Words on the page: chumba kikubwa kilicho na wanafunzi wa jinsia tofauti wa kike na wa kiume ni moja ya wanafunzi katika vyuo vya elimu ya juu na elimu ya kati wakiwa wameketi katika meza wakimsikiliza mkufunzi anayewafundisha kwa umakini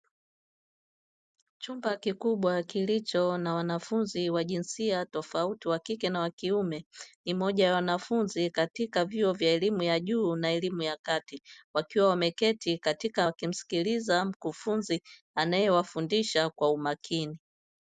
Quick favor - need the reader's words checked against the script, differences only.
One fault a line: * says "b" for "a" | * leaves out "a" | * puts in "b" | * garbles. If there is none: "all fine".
* leaves out "meza"